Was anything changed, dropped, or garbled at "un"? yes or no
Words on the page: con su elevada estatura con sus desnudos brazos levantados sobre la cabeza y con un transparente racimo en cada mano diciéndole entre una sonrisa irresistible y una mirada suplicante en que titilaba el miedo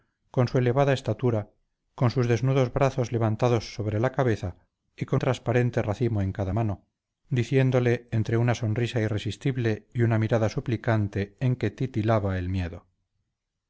yes